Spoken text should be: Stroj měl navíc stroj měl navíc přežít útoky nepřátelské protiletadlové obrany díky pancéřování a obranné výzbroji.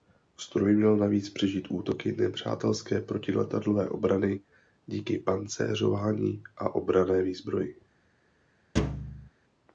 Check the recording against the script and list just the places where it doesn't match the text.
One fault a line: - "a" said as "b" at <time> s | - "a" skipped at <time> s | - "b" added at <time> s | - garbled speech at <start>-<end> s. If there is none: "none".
- "stroj měl navíc" skipped at 1.3 s